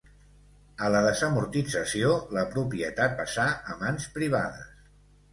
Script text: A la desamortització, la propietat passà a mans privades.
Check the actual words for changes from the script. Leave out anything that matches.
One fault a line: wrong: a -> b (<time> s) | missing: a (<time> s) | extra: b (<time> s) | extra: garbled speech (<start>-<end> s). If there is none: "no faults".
no faults